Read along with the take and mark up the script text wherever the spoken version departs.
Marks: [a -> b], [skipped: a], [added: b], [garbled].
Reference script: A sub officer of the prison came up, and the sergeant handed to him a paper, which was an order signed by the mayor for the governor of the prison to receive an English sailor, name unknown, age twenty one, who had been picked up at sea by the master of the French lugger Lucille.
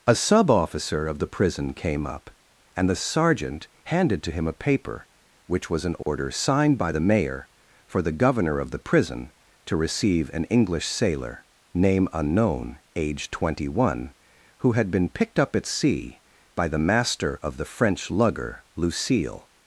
A sub officer of the prison came up, and the sergeant handed to him a paper, which was an order signed by the mayor for the governor of the prison to receive an English sailor, name unknown, age twenty one, who had been picked up at sea by the master of the French lugger Lucille.